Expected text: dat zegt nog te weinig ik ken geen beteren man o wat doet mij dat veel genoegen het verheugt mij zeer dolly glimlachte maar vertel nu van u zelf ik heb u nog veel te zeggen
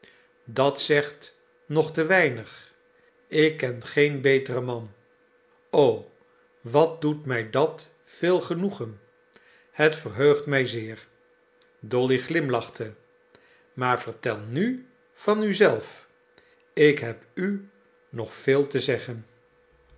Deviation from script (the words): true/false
false